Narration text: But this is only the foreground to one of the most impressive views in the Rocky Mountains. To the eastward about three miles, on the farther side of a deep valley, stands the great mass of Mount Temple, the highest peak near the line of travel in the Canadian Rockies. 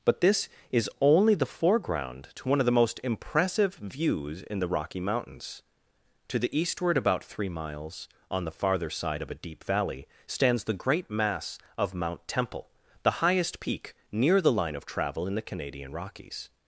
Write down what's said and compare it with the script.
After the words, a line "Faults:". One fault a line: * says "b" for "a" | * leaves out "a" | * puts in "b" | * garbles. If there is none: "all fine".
But this is only the foreground to one of the most impressive views in the Rocky Mountains. To the eastward about three miles, on the farther side of a deep valley, stands the great mass of Mount Temple, the highest peak near the line of travel in the Canadian Rockies.
Faults:
all fine